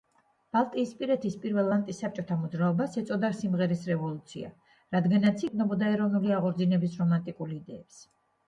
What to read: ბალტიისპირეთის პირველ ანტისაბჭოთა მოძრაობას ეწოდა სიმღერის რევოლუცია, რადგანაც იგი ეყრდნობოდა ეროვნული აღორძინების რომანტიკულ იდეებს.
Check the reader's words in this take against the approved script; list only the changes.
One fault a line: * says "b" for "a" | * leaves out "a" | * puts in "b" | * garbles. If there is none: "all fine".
* leaves out "იგი"